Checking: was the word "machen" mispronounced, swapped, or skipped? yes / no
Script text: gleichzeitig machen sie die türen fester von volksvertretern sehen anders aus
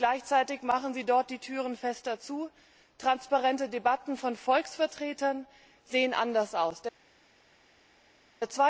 no